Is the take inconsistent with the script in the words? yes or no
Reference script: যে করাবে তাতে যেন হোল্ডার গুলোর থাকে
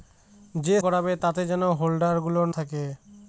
no